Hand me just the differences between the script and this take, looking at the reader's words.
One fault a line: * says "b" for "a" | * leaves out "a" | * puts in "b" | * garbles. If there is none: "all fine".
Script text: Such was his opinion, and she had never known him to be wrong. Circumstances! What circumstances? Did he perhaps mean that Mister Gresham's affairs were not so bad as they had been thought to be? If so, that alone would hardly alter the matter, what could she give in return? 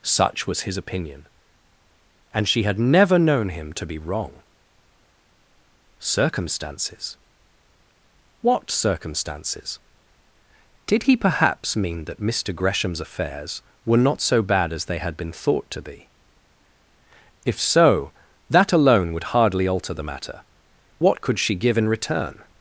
all fine